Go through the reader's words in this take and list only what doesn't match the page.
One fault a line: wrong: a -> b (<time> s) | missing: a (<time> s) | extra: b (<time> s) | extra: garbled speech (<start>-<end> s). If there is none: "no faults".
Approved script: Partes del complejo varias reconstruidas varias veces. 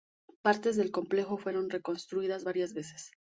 wrong: varias -> fueron (1.4 s)